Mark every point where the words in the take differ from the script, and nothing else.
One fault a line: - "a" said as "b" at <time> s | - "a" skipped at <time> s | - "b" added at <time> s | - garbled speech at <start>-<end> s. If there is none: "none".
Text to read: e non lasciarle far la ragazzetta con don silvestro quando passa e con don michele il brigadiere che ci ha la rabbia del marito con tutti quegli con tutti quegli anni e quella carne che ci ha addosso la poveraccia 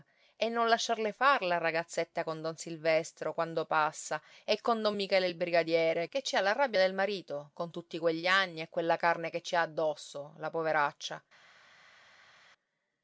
- "con tutti quegli" skipped at 8.3 s